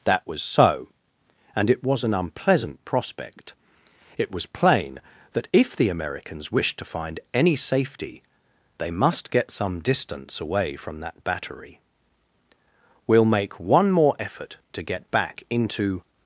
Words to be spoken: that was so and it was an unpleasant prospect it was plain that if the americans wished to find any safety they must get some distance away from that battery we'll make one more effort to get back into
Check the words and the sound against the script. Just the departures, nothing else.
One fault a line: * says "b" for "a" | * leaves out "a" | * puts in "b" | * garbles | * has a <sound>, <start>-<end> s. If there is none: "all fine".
all fine